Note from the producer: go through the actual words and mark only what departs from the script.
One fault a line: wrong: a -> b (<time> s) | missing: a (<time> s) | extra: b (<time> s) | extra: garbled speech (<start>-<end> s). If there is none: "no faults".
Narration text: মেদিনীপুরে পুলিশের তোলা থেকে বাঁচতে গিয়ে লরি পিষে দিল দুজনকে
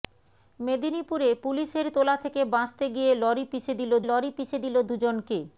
extra: লরি পিষে দিল (4.0 s)